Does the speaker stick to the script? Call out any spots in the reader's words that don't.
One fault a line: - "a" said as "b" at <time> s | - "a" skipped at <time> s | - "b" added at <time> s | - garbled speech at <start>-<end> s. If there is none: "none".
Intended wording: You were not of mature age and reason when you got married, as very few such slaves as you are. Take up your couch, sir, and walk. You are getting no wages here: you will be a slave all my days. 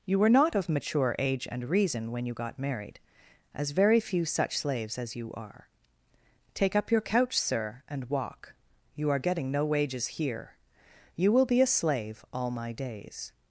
none